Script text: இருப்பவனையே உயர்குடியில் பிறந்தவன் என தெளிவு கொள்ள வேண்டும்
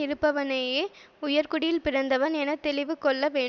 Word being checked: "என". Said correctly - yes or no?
yes